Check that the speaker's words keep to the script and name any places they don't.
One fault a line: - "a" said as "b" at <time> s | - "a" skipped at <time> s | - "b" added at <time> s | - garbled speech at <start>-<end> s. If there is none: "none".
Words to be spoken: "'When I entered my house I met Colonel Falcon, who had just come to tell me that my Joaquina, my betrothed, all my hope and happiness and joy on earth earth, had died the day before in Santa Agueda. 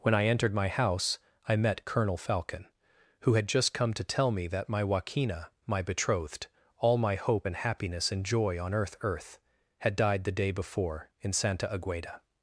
none